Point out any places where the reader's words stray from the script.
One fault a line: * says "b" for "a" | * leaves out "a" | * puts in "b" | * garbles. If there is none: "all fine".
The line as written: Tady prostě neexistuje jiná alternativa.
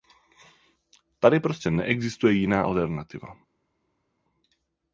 all fine